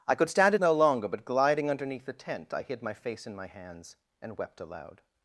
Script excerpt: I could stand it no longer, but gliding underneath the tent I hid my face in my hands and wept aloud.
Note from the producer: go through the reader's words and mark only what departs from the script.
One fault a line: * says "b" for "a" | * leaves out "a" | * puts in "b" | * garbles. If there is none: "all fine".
all fine